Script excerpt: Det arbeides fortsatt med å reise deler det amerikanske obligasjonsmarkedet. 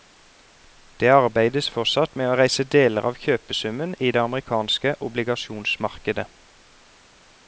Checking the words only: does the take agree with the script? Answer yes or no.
no